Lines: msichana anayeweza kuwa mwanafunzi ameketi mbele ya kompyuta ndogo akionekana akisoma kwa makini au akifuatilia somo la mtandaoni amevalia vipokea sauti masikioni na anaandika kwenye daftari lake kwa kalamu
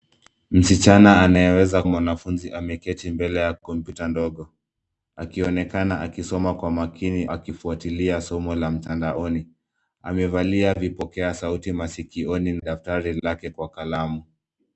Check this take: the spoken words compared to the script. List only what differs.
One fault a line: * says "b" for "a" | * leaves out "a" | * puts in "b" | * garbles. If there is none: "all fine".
* leaves out "kuwa"
* leaves out "au"
* leaves out "na anaandika kwenye"